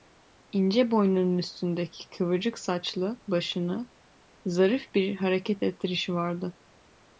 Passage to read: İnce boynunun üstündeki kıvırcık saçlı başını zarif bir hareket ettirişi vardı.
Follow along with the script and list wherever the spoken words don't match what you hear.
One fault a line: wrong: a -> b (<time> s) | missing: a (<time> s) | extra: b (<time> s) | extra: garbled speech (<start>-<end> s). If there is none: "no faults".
no faults